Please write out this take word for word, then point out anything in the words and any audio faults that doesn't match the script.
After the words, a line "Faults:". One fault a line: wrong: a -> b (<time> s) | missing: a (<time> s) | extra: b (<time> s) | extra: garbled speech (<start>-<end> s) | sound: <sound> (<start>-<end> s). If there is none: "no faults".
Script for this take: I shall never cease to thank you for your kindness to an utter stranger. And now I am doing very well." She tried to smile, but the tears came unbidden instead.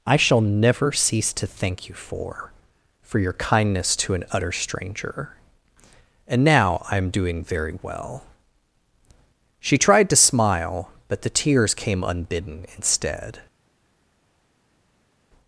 I shall never cease to thank you for for your kindness to an utter stranger. And now I am doing very well." She tried to smile, but the tears came unbidden instead.
Faults:
extra: for (3.0 s)